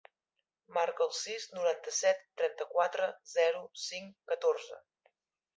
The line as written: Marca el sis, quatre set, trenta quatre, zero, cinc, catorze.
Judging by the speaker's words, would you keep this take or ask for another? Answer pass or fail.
fail